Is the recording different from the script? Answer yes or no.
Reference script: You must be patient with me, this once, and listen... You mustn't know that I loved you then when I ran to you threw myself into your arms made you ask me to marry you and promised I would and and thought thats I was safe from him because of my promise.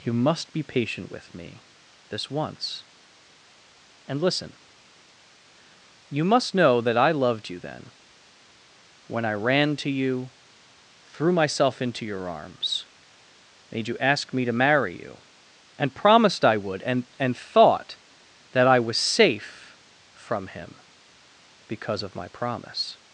yes